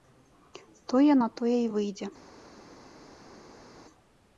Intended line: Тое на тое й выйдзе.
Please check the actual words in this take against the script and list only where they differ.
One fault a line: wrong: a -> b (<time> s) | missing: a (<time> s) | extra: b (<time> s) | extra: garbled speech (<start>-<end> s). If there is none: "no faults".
no faults